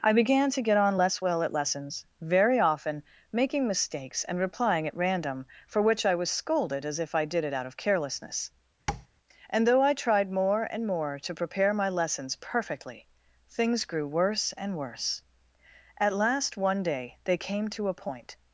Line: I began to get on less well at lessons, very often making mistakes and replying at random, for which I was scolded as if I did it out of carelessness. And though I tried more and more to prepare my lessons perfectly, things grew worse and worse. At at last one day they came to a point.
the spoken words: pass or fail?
fail